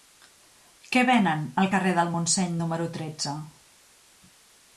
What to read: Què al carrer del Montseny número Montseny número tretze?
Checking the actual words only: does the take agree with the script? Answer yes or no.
no